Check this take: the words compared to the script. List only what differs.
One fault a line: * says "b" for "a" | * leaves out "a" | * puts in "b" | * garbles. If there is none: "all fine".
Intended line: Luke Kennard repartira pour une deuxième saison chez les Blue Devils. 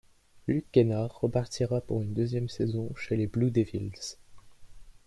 all fine